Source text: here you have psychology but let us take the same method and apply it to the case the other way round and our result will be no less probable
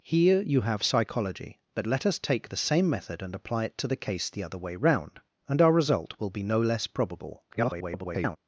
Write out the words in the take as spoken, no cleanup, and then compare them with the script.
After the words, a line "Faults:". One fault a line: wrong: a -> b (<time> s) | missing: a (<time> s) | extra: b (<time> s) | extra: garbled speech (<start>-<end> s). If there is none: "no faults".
here you have psychology but let us take the same method and apply it to the case the other way round and our result will be no less probable [garbled]
Faults:
extra: garbled speech (7.5-8.4 s)